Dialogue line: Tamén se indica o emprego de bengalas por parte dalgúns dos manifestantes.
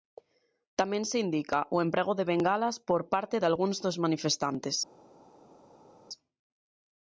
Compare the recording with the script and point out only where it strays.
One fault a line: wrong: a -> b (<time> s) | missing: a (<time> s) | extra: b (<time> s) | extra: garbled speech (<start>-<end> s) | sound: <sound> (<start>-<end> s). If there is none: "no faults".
no faults